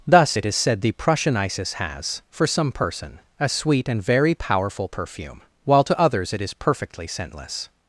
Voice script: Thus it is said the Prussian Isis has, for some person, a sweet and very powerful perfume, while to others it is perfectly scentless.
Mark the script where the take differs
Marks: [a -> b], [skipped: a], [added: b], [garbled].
Thus it is said the Prussian Isis has, for some person, a sweet and very powerful perfume, while to others it is perfectly scentless.